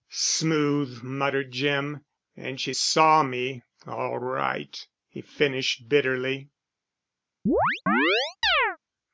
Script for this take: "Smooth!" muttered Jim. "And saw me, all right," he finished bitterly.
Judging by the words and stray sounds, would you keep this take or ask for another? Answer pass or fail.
fail